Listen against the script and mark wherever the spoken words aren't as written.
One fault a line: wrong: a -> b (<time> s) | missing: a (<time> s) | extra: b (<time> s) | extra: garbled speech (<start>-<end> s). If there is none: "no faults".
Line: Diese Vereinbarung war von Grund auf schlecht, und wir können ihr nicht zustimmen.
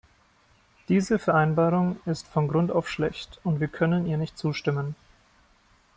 wrong: war -> ist (2.1 s)